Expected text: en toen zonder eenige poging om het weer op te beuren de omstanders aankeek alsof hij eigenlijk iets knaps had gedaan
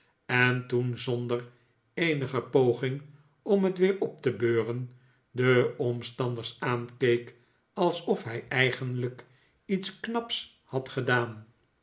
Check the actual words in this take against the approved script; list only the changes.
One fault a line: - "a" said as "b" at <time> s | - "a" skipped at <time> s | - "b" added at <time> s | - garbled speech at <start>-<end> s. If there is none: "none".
none